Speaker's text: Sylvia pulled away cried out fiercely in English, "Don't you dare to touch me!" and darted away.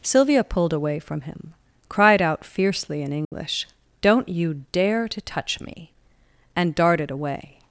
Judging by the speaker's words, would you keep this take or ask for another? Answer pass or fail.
fail